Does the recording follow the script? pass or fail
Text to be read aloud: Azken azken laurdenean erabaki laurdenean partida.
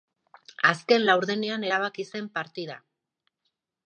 fail